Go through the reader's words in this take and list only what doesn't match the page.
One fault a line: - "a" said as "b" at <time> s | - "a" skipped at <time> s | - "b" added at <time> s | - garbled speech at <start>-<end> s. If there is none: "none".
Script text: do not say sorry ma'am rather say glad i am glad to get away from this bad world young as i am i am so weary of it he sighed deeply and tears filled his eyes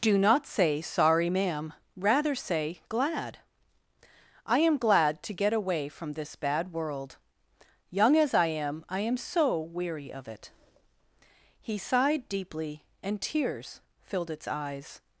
- "his" said as "its" at 14.3 s